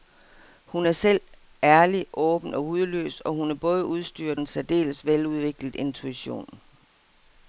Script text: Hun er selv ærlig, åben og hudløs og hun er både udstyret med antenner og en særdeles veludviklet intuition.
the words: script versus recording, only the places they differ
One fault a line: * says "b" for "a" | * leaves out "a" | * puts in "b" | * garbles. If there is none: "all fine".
* leaves out "med antenner og"